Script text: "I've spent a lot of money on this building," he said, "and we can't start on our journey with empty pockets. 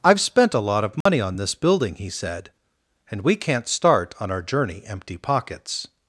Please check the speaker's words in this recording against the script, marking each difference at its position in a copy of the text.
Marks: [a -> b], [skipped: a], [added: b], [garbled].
"I've spent a lot of money on this building," he said, "and we can't start on our journey [skipped: with] empty pockets.